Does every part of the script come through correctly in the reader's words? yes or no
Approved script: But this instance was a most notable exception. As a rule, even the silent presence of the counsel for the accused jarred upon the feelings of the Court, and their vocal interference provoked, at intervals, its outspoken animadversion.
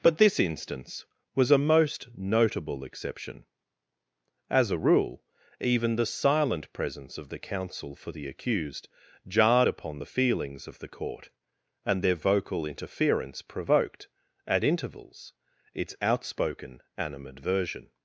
yes